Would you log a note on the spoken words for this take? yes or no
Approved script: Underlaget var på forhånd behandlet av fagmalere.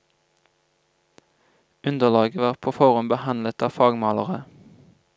no